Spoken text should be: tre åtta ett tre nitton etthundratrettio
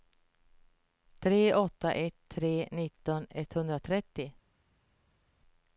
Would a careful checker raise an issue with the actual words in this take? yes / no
no